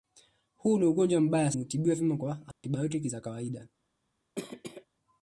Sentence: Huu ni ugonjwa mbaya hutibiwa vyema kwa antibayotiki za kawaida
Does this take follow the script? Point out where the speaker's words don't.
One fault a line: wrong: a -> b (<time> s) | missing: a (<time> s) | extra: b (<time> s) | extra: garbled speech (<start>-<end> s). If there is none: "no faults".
no faults